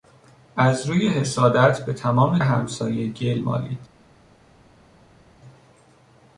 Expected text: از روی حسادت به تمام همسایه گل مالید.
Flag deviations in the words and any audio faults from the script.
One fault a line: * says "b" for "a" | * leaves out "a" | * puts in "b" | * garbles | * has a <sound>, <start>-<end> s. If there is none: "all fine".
all fine